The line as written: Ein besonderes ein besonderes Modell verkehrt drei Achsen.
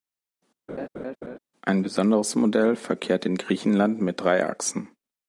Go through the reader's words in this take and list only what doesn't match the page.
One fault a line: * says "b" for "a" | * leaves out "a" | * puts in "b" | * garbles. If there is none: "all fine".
* says "Modell verkehrt in Griechenland mit" for "ein besonderes Modell verkehrt"